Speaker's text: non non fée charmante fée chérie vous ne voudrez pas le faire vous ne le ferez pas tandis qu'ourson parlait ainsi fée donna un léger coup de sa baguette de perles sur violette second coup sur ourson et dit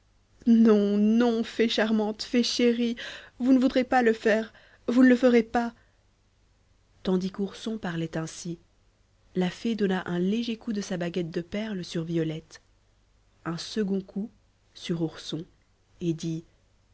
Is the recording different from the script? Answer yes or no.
yes